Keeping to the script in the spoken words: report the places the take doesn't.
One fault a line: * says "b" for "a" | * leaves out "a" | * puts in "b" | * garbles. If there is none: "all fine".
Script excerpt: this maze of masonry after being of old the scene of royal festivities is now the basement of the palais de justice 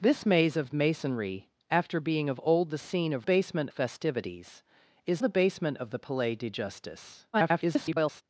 * says "basement" for "royal"
* leaves out "now"
* garbles